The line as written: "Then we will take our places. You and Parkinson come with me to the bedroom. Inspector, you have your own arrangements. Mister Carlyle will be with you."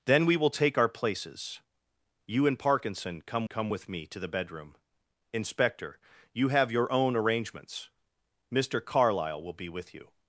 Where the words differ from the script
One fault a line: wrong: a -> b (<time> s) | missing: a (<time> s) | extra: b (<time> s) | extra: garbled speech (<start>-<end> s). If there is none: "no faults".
extra: come (3.4 s)